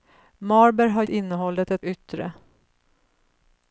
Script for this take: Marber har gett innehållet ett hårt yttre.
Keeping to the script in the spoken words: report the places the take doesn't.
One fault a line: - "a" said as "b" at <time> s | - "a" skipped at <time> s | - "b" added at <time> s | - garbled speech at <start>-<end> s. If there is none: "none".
- "gett" skipped at 1.0 s
- "hårt" skipped at 1.9 s